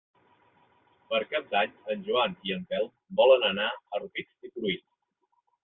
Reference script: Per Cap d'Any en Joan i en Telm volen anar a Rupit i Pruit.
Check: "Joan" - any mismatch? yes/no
no